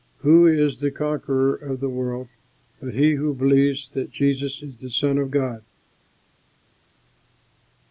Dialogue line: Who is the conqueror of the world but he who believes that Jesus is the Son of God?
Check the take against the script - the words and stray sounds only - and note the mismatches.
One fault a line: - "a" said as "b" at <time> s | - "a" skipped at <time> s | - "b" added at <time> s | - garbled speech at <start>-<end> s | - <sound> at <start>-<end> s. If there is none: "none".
none